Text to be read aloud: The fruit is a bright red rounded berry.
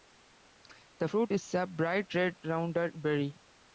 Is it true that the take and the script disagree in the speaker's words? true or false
false